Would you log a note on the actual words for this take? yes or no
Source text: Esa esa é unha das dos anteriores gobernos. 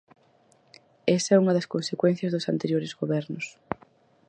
yes